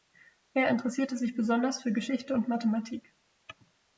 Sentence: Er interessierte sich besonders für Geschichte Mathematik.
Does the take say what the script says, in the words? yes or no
no